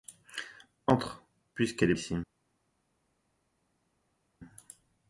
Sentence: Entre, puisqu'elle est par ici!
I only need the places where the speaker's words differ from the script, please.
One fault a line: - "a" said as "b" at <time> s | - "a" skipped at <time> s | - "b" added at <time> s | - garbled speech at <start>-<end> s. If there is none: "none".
- "par" skipped at 1.9 s